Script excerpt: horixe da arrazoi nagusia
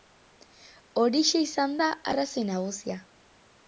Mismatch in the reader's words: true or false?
true